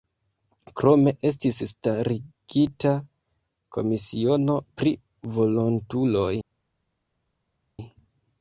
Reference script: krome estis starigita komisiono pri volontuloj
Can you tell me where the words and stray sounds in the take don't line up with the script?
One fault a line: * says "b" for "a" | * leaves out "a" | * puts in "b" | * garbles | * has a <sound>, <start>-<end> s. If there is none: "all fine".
all fine